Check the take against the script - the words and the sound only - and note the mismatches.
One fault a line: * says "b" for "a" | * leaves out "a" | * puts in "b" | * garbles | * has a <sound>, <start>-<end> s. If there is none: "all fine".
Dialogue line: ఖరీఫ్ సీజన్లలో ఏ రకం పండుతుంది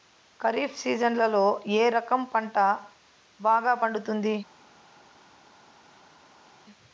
* puts in "పంట బాగా"